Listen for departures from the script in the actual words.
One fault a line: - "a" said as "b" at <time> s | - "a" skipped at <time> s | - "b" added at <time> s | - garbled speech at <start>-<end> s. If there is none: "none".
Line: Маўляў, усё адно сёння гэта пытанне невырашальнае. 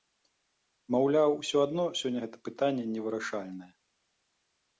none